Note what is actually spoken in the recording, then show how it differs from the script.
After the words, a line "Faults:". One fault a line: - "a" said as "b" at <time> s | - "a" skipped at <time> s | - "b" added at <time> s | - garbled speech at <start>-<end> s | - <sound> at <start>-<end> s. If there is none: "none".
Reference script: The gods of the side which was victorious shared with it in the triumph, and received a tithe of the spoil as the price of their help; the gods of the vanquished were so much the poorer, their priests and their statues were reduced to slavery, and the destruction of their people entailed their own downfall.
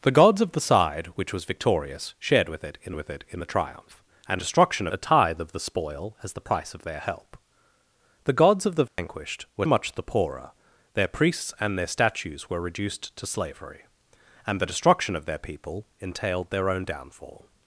The gods of the side which was victorious shared with it in with it in the triumph, and destruction a tithe of the spoil as the price of their help; the gods of the vanquished were much the poorer, their priests and their statues were reduced to slavery, and the destruction of their people entailed their own downfall.
Faults:
- "with it in" added at 2.9 s
- "received" said as "destruction" at 4.4 s
- dropout at 8.9-9.0 s
- "so" skipped at 9.7 s